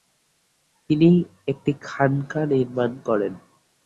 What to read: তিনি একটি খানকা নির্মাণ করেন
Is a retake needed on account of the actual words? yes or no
no